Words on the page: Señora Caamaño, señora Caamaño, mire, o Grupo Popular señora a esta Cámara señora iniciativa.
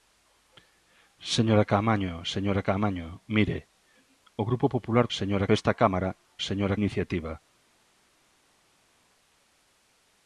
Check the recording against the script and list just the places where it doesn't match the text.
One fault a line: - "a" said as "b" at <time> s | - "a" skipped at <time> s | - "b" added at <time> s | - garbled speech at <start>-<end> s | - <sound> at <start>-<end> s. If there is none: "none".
none